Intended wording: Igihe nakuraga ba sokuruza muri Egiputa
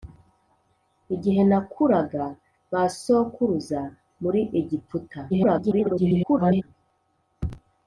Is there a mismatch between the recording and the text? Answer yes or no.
yes